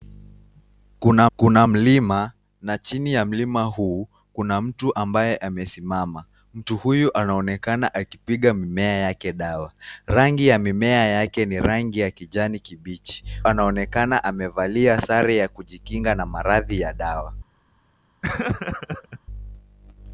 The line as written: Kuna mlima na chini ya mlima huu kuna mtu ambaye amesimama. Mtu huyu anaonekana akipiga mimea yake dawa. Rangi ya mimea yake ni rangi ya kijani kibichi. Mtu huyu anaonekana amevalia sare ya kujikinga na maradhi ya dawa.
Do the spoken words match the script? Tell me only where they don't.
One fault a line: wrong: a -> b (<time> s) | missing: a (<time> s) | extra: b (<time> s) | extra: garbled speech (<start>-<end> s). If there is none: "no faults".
extra: kuna (1.4 s)
missing: Mtu huyu (13.2 s)